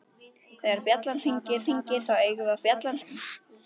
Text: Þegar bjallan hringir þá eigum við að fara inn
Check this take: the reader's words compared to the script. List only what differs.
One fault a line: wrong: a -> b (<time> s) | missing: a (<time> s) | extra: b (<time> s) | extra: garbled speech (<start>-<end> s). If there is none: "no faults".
extra: hringir (1.7 s)
wrong: fara -> bjallan (2.7 s)